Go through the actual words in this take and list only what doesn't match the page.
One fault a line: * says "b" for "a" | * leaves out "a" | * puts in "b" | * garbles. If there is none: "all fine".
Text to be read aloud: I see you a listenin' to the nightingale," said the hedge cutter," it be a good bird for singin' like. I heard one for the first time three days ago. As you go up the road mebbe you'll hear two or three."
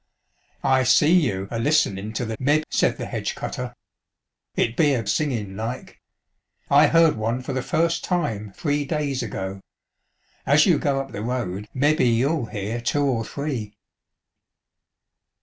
* says "mebbe" for "nightingale"
* leaves out "good bird for"